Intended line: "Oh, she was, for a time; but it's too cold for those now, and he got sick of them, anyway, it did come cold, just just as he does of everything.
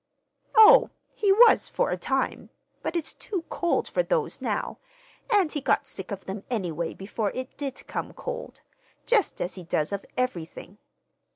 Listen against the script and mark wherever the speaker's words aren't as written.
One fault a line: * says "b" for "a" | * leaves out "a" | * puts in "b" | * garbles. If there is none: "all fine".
* says "he" for "she"
* puts in "before"
* leaves out "just"